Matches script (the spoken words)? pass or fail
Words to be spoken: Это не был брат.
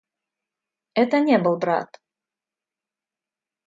pass